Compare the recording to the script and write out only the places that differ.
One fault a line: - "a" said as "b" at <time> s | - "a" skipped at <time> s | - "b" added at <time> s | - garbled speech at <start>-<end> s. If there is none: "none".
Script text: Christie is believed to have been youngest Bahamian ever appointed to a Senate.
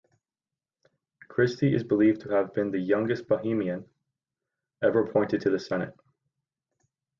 - "the" added at 2.7 s
- "a" said as "the" at 5.5 s